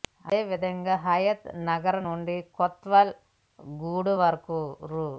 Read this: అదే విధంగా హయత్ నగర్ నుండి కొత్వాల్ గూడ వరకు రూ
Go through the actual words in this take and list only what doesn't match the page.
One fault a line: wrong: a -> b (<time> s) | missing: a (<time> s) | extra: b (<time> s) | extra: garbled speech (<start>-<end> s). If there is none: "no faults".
no faults